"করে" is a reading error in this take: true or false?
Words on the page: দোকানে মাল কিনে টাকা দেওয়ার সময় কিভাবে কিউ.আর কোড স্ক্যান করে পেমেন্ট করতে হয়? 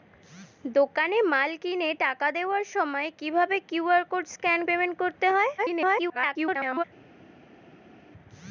true